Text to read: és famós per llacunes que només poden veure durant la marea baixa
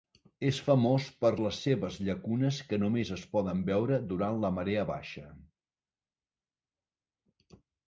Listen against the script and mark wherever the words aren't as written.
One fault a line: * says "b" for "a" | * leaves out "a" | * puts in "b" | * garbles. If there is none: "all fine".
* puts in "les seves"
* puts in "es"